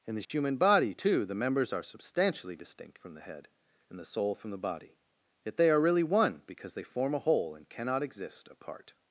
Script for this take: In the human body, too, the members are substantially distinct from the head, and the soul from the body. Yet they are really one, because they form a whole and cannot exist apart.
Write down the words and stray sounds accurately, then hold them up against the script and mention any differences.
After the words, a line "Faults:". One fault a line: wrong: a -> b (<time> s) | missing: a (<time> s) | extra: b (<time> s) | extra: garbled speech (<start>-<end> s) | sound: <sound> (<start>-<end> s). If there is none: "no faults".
In the human body, too, the members are substantially distinct from the head, and the soul from the body. Yet they are really one, because they form a whole and cannot exist apart.
Faults:
sound: dropout (0.2-0.3 s)